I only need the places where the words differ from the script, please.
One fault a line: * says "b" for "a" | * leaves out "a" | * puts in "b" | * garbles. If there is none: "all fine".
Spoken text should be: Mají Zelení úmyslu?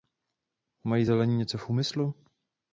* puts in "něco v"